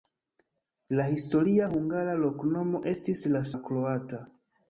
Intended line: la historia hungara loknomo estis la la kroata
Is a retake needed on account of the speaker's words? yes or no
no